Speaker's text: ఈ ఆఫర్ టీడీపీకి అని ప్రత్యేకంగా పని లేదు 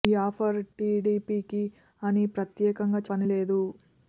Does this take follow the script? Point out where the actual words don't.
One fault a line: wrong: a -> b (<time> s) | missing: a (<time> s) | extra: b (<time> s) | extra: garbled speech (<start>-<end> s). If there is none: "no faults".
no faults